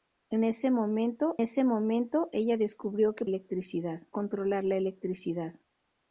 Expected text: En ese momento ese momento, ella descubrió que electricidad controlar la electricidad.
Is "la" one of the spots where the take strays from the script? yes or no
no